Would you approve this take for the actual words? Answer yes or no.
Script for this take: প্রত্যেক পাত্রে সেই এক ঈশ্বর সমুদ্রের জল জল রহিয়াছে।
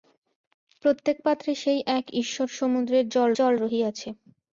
yes